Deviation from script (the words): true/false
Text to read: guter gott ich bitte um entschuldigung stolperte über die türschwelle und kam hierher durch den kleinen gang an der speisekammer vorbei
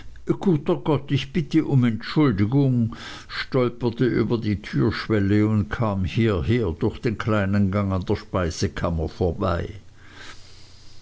false